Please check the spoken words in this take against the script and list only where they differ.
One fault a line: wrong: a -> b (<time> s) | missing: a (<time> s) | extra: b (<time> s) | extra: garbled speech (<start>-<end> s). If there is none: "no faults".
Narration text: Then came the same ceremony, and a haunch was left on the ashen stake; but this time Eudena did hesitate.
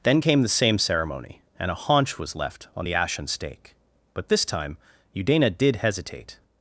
no faults